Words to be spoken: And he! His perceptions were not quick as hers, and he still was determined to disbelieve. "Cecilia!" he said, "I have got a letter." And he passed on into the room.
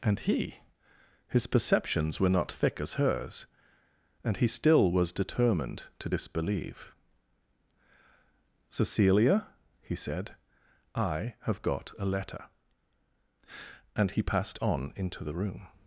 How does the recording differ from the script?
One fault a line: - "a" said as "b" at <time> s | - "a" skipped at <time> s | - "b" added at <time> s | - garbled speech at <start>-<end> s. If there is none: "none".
- "quick" said as "thick" at 2.5 s